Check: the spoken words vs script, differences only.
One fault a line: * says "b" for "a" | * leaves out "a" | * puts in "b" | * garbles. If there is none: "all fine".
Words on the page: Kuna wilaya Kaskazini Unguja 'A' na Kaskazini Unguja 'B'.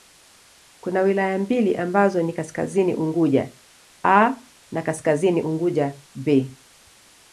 * puts in "mbili ambazo ni"